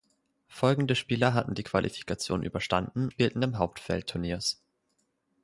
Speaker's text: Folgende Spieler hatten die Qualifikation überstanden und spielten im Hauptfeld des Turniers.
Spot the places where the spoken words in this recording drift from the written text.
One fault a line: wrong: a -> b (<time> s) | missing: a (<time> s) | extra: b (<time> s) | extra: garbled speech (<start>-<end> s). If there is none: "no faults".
missing: und (3.1 s)
missing: des (4.1 s)